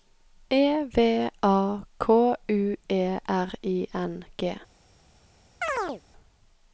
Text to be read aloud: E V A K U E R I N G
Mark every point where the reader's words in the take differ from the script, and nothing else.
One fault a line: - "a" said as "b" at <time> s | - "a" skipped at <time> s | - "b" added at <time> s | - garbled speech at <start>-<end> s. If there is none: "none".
none